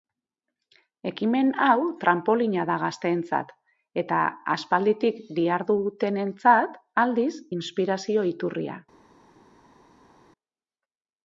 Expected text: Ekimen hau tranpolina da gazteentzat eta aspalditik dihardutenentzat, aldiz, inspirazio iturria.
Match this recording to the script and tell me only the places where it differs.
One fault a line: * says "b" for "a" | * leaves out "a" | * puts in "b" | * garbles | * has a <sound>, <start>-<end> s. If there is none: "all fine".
all fine